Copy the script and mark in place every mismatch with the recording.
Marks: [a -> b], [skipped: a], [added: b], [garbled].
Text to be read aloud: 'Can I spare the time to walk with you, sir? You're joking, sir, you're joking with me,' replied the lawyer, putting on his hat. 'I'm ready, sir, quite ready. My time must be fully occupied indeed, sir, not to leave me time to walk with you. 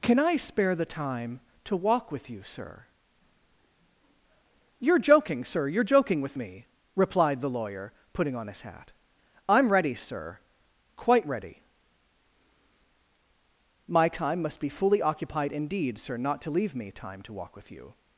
'Can I spare the time to walk with you, sir? You're joking, sir, you're joking with me,' replied the lawyer, putting on his hat. 'I'm ready, sir, quite ready. My time must be fully occupied indeed, sir, not to leave me time to walk with you.